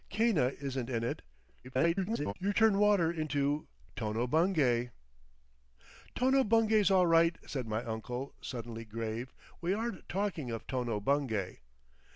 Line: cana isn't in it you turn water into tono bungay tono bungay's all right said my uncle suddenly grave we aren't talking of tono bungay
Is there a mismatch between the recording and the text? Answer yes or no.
yes